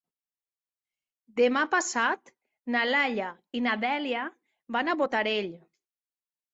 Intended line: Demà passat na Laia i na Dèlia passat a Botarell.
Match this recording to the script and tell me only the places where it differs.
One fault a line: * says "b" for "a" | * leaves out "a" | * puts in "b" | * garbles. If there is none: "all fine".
* says "van" for "passat"